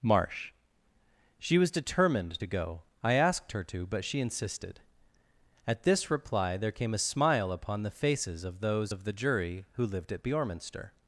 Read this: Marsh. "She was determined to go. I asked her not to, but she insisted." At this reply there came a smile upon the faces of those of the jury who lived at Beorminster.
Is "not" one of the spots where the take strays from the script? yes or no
yes